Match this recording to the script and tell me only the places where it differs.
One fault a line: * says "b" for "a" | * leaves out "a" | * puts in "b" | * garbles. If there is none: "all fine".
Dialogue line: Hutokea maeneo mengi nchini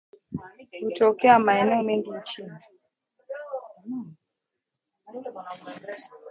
all fine